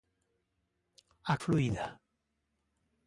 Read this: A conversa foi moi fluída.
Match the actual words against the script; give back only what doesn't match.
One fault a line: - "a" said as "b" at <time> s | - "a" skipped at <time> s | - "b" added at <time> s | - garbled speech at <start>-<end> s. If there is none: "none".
- "conversa foi moi" skipped at 1.4 s